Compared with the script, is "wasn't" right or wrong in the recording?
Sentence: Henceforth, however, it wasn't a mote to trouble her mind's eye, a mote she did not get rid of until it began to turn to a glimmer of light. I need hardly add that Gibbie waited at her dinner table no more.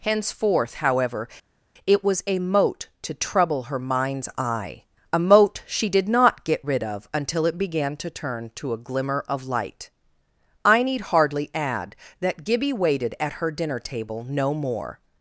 wrong